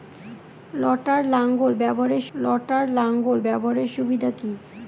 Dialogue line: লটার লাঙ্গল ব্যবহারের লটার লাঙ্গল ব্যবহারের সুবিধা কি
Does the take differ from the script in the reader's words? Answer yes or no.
no